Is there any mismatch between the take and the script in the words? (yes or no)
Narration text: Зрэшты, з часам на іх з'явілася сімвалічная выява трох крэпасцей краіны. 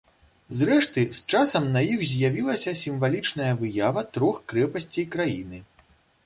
no